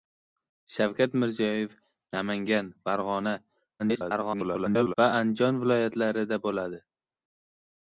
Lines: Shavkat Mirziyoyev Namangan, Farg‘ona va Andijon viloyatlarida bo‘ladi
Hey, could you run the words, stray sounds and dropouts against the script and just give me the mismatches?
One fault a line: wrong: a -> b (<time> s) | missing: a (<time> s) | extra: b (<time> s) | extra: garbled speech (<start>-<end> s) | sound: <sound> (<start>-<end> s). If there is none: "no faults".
extra: garbled speech (3.8-4.9 s)